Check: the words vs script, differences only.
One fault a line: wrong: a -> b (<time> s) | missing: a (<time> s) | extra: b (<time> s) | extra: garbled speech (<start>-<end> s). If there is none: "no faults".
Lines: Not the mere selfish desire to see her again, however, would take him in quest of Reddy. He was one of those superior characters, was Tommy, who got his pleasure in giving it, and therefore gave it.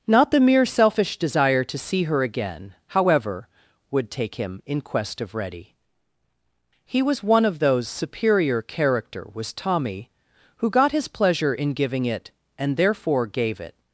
wrong: characters -> character (8.6 s)